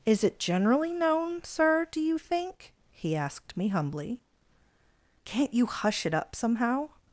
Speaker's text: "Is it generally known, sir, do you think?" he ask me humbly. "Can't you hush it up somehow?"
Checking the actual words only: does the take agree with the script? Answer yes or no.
no